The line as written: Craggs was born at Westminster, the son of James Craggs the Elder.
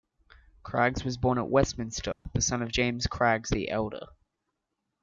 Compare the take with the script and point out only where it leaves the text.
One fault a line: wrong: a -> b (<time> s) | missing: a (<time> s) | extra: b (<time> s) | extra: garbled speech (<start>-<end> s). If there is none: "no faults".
no faults